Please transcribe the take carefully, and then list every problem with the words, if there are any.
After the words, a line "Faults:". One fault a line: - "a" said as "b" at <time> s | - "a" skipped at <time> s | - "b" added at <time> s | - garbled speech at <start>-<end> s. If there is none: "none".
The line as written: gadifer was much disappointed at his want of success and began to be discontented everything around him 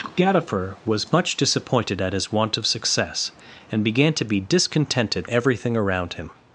gadifer was much disappointed at his want of success and began to be discontented everything around him
Faults:
none